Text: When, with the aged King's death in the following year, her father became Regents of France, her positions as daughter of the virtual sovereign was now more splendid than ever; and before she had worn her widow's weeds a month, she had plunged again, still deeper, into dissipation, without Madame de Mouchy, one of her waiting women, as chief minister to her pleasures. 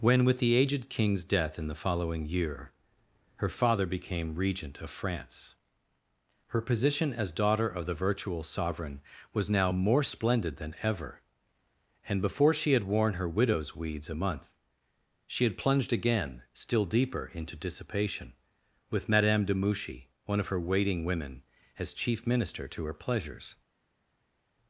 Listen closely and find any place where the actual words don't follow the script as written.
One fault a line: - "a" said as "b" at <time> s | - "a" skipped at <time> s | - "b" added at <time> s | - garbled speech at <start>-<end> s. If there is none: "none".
- "Regents" said as "Regent" at 4.3 s
- "positions" said as "position" at 6.6 s
- "without" said as "with" at 18.9 s